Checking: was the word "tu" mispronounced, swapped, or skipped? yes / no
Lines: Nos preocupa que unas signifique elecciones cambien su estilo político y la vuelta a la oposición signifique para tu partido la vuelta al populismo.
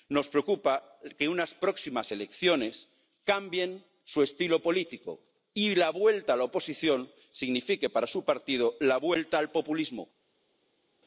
yes